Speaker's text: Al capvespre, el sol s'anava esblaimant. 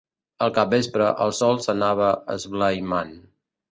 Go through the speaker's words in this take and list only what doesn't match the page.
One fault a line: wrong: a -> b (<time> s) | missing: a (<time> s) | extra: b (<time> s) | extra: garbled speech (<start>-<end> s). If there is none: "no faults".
no faults